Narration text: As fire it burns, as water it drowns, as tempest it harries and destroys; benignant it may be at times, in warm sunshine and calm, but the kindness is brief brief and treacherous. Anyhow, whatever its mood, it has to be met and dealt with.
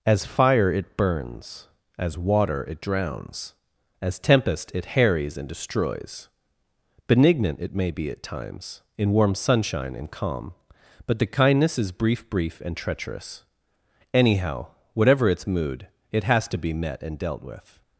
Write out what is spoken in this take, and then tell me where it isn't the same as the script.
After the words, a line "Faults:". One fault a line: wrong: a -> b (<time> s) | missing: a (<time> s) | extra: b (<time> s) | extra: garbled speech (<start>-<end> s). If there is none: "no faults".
As fire it burns, as water it drowns, as tempest it harries and destroys; benignant it may be at times, in warm sunshine and calm, but the kindness is brief brief and treacherous. Anyhow, whatever its mood, it has to be met and dealt with.
Faults:
no faults